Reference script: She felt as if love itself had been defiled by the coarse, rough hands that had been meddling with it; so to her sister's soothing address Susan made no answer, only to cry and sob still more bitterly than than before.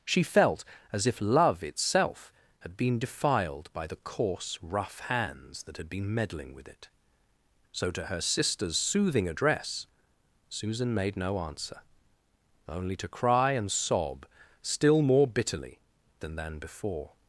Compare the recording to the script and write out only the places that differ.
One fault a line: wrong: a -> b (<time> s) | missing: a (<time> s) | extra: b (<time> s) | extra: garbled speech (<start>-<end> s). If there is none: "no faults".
no faults